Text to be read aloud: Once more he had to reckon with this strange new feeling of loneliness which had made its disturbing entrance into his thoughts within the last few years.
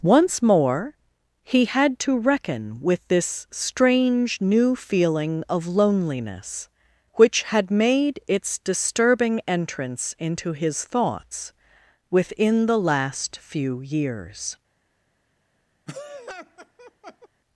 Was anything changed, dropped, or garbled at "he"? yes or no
no